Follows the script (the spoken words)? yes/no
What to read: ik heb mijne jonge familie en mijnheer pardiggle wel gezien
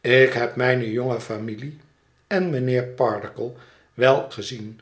yes